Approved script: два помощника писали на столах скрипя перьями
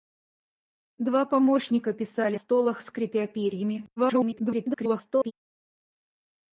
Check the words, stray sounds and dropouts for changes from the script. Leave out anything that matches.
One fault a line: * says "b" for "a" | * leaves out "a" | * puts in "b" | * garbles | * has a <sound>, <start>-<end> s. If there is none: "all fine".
* leaves out "на"
* garbles